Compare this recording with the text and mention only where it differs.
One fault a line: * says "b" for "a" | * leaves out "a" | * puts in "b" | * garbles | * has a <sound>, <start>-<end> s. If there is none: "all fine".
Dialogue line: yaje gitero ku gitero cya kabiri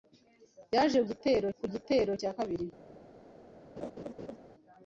* has a laugh, 3.8-4.4 s